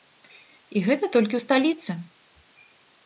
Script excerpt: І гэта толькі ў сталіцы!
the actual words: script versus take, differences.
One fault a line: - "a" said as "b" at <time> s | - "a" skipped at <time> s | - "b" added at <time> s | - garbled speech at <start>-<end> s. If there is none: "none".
none